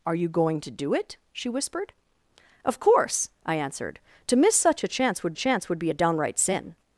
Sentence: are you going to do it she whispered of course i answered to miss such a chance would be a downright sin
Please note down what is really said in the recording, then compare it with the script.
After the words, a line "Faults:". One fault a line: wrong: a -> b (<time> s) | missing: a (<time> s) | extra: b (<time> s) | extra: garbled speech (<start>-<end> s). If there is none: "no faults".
are you going to do it she whispered of course i answered to miss such a chance would chance would be a downright sin
Faults:
extra: chance would (5.4 s)